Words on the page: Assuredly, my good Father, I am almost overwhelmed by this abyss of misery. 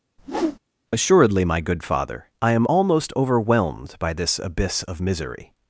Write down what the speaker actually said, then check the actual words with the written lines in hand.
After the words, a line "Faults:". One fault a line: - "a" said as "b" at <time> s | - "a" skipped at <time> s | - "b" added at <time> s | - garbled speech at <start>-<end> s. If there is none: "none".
Assuredly, my good Father, I am almost overwhelmed by this abyss of misery.
Faults:
none